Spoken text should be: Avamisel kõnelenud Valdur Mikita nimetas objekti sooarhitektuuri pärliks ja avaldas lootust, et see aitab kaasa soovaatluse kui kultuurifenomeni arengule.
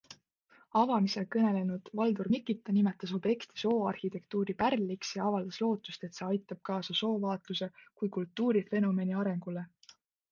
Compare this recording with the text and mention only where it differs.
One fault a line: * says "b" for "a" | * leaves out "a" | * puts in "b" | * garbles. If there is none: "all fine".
all fine